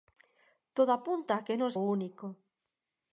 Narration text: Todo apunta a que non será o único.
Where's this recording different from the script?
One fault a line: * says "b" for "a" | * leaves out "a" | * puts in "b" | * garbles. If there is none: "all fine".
* leaves out "será"